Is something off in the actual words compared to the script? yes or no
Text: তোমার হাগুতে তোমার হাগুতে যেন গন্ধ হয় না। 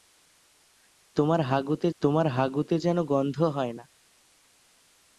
no